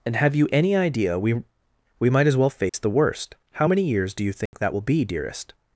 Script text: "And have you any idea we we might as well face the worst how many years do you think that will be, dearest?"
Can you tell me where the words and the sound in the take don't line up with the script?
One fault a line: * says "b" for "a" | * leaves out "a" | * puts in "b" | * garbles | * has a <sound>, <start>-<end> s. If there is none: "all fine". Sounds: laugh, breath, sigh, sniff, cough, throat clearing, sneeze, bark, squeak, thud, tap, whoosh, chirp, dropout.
* has a dropout, 2.7-2.7 s
* has a dropout, 4.5-4.5 s